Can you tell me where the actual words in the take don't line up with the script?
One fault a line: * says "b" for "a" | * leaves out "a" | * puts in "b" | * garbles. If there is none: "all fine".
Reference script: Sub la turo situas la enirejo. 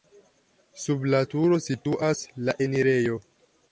all fine